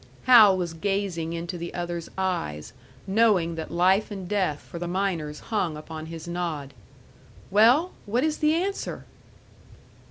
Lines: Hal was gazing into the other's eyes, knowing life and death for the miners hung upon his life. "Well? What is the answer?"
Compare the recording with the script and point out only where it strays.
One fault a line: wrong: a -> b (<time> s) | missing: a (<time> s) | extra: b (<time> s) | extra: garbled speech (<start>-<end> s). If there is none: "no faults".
extra: that (3.5 s)
wrong: life -> nod (6.3 s)